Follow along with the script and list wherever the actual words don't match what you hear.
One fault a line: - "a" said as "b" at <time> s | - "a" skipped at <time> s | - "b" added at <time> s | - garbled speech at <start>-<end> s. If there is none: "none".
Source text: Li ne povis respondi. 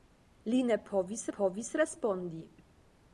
- "povis" added at 1.3 s